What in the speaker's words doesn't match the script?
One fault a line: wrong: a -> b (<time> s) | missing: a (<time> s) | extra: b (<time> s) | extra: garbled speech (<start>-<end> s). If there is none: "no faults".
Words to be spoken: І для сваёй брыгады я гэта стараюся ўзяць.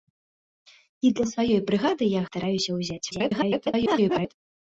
missing: гэта (2.2 s)
extra: garbled speech (3.1-4.3 s)